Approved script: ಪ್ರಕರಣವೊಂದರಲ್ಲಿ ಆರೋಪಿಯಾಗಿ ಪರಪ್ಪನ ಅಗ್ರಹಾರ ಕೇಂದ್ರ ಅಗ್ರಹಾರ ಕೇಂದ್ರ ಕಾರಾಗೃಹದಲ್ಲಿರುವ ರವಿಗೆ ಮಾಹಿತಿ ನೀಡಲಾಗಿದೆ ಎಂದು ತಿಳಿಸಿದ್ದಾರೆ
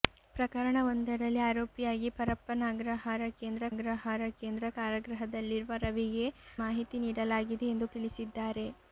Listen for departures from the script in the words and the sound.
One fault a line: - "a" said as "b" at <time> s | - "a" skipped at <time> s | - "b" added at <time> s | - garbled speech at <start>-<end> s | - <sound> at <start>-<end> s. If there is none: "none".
none